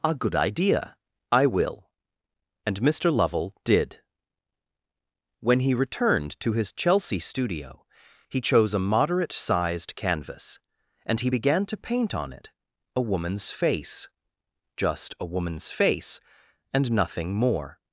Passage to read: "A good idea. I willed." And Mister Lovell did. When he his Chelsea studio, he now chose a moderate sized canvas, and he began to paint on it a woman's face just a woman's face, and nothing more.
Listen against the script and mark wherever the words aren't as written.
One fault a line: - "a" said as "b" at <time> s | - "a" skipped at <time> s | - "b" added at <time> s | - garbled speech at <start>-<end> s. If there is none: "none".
- "willed" said as "will" at 1.4 s
- "returned to" added at 5.8 s
- "now" skipped at 8.4 s